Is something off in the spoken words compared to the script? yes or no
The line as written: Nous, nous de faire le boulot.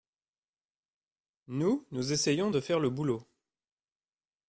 yes